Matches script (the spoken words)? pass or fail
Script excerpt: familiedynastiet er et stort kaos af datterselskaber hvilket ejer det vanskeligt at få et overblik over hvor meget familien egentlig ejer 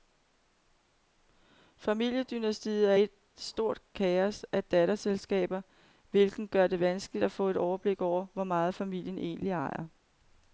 fail